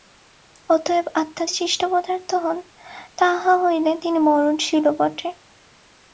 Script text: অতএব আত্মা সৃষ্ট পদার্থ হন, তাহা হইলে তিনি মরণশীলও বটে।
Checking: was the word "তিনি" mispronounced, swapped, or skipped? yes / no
no